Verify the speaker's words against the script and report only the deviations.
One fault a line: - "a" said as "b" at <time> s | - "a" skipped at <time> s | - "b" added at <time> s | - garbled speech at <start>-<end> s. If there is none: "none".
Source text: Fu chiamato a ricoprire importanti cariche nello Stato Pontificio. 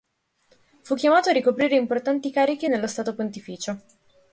none